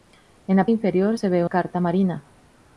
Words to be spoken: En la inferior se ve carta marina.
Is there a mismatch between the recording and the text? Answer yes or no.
no